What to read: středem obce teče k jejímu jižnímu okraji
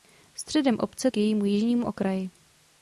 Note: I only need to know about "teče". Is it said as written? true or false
false